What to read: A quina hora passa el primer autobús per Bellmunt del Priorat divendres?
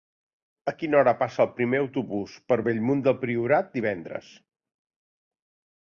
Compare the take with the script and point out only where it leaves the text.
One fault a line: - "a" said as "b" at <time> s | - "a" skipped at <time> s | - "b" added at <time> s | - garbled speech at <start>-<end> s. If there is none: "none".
none